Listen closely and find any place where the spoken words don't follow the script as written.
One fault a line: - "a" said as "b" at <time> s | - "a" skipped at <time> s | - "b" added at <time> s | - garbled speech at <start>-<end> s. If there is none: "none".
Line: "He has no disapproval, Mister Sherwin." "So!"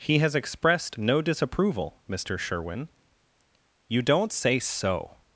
- "expressed" added at 0.3 s
- "You don't say" added at 3.9 s